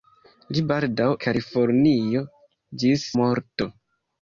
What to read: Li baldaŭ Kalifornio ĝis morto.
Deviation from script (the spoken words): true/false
false